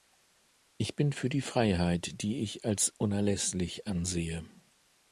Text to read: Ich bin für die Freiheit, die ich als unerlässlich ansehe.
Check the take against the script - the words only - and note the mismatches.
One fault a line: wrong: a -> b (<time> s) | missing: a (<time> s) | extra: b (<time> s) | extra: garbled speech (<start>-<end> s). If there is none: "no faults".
no faults